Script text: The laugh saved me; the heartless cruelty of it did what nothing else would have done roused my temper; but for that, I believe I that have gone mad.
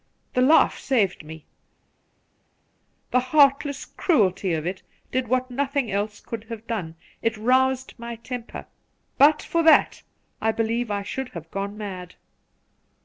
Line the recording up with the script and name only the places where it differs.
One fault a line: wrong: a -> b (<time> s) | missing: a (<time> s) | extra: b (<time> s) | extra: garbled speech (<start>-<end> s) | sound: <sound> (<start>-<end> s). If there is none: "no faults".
wrong: would -> could (6.2 s)
extra: it (7.2 s)
wrong: that -> should (11.0 s)